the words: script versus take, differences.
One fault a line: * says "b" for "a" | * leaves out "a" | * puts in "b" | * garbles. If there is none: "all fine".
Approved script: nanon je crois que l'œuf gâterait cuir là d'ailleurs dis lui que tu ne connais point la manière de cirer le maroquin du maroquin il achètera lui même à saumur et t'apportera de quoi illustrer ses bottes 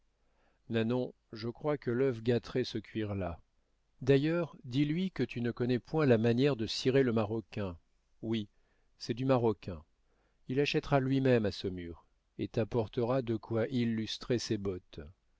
* puts in "ce"
* puts in "oui c'est"